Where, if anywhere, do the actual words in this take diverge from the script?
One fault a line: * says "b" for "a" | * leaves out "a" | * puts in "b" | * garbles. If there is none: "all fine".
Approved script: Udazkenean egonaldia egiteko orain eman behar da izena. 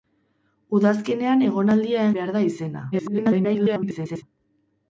* leaves out "egiteko orain eman"
* garbles